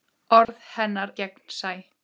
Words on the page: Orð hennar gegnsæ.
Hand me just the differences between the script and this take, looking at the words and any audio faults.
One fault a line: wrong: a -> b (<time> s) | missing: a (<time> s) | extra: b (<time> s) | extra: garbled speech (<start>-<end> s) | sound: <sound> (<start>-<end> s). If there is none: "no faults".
sound: dropout (0.4-0.5 s)